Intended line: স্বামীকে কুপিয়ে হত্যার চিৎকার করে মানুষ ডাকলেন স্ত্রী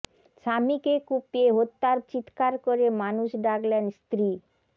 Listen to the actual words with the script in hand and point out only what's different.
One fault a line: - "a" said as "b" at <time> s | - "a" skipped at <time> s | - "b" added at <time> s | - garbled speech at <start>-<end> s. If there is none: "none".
none